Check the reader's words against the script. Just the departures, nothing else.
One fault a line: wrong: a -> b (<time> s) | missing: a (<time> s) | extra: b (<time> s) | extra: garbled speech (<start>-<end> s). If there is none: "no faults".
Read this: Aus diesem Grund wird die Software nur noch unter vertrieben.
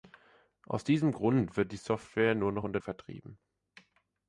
no faults